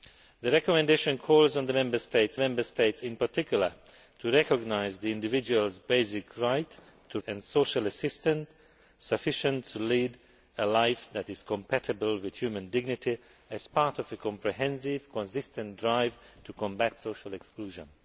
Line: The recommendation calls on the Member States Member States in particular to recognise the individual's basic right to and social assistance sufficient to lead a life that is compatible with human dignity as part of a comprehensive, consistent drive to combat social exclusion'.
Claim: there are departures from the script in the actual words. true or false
false